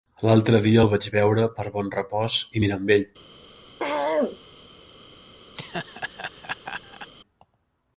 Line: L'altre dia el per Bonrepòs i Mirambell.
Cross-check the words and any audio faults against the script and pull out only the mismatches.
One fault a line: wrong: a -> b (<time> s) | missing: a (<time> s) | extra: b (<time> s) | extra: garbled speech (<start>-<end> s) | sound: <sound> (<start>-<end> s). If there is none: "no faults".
extra: vaig veure (0.9 s)
sound: throat clearing (3.8-4.4 s)
sound: laugh (5.5-7.1 s)